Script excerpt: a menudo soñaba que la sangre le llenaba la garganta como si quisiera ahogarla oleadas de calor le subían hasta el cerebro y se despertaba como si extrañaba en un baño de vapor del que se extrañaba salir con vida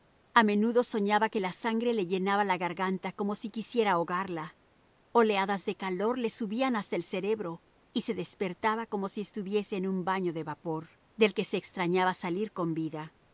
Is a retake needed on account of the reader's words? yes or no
yes